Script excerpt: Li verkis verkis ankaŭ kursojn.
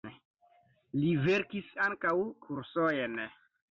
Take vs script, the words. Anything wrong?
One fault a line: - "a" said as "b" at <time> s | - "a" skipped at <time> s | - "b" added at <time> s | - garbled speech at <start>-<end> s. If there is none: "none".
- "verkis" skipped at 1.7 s